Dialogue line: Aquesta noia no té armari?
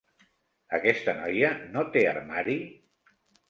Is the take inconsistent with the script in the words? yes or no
no